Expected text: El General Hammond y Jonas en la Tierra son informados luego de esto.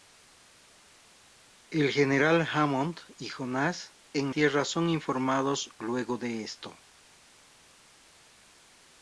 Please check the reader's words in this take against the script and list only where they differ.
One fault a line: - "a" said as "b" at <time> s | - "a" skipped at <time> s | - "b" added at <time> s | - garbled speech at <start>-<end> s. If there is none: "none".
- "la" skipped at 4.3 s